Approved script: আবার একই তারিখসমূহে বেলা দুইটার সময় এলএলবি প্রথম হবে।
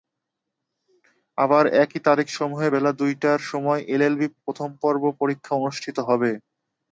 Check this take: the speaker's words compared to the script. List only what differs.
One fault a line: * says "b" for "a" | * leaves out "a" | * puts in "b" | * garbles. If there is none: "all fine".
* puts in "পর্ব পরীক্ষা অনুষ্ঠিত"